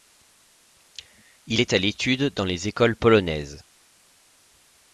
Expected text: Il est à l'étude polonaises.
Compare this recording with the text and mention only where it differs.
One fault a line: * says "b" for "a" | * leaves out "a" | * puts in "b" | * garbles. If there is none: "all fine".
* puts in "dans les écoles"